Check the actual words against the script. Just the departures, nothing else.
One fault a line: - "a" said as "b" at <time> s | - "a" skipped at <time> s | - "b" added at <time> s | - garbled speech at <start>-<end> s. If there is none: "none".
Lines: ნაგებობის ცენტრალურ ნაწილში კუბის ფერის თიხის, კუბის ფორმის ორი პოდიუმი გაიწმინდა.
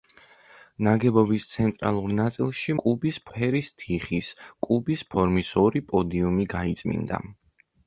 none